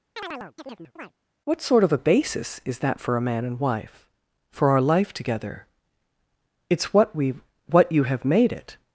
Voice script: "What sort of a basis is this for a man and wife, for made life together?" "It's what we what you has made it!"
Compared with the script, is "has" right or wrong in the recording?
wrong